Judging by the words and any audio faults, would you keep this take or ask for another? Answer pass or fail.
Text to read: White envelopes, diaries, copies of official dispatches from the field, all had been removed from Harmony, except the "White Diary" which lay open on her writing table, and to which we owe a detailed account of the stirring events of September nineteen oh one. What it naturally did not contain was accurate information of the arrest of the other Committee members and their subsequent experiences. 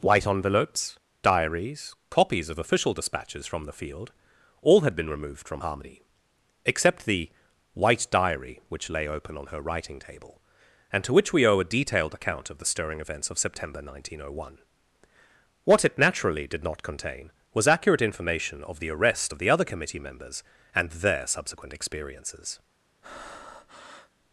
fail